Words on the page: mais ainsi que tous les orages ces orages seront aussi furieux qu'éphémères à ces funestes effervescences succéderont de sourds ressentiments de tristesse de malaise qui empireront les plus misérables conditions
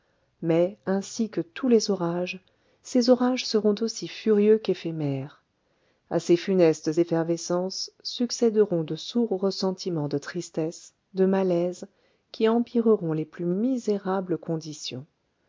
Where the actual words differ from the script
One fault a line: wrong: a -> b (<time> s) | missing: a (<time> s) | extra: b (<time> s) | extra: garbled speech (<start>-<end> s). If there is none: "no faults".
no faults